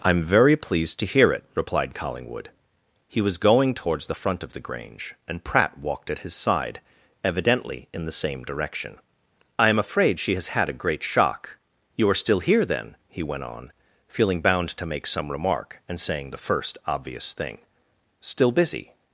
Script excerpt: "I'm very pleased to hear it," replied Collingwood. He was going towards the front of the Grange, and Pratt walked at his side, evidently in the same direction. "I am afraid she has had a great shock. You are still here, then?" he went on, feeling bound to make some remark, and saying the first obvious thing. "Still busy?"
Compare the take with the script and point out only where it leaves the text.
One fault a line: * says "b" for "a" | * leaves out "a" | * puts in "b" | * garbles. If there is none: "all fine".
all fine